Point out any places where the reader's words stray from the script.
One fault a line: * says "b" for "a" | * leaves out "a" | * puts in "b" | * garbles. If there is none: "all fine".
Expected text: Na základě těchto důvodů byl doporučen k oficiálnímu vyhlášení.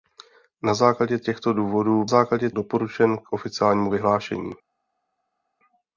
* says "základě" for "byl"